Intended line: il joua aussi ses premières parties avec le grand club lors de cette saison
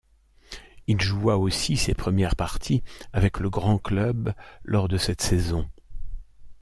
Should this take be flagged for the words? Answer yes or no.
no